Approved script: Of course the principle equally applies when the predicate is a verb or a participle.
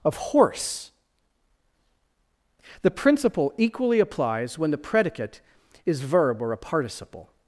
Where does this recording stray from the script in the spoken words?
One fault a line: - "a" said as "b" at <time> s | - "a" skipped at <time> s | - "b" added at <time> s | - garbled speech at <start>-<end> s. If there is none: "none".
- "course" said as "horse" at 0.2 s
- "a" skipped at 6.0 s